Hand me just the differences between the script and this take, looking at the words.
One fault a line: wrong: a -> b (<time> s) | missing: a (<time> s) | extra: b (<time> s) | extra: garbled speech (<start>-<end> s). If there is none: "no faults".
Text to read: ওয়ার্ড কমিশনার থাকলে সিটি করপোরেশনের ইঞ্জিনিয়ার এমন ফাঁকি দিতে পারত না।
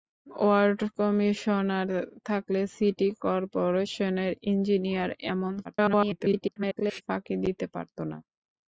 extra: garbled speech (5.6-7.0 s)